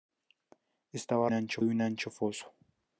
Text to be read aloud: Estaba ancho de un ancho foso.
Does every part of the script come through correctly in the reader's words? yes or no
yes